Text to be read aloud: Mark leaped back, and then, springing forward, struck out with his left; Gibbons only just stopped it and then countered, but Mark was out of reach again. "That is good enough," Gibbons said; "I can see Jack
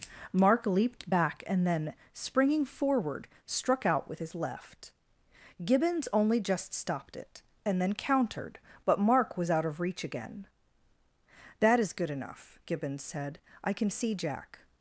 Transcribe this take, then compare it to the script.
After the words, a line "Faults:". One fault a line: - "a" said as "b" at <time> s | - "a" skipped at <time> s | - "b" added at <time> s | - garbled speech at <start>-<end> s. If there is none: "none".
Mark leaped back, and then, springing forward, struck out with his left; Gibbons only just stopped it and then countered, but Mark was out of reach again. "That is good enough," Gibbons said; "I can see Jack
Faults:
none